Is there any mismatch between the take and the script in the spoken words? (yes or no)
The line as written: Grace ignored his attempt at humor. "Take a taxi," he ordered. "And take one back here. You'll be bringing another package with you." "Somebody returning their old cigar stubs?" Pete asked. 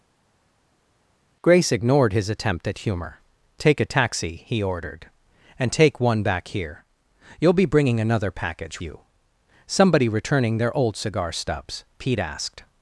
yes